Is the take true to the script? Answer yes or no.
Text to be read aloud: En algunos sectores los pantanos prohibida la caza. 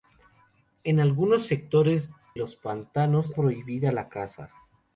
yes